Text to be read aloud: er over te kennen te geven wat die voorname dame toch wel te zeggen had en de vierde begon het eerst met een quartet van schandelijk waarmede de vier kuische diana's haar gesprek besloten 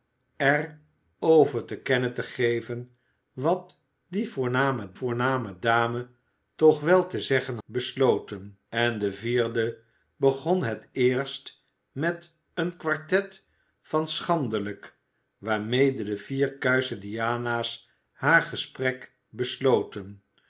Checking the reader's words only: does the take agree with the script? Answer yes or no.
no